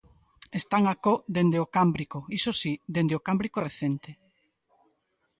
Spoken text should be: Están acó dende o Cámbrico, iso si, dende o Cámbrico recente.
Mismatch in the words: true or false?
false